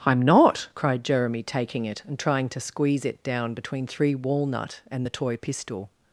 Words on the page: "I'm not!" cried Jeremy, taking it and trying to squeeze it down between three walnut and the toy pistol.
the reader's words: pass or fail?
pass